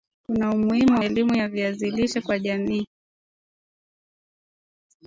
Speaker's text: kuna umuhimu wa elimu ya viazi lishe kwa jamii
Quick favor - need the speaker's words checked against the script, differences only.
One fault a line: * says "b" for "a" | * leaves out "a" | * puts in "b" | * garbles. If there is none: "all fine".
* leaves out "wa"